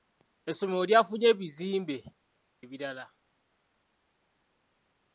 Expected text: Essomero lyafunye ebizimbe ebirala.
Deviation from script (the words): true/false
false